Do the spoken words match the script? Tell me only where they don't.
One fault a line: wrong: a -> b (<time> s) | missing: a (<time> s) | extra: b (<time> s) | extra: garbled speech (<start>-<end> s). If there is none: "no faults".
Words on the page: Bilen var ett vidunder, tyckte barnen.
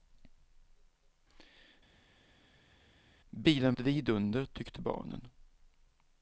missing: var (3.7 s)